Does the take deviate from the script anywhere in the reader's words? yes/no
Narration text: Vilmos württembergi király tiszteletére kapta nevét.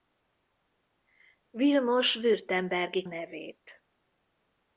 yes